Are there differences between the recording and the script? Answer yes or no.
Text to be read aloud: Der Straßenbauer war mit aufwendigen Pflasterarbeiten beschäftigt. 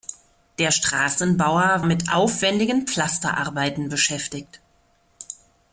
yes